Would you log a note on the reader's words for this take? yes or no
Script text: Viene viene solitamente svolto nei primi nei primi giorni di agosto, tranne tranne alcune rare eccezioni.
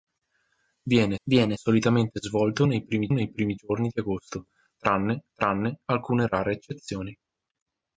no